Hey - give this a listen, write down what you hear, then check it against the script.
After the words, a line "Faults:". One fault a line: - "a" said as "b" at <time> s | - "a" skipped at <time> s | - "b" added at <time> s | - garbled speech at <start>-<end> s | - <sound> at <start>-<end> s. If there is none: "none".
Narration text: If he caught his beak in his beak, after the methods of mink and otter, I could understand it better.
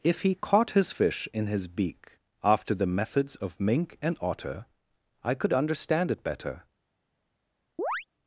If he caught his fish in his beak, after the methods of mink and otter, I could understand it better.
Faults:
- "beak" said as "fish" at 0.9 s
- chirp at 7.8-8.0 s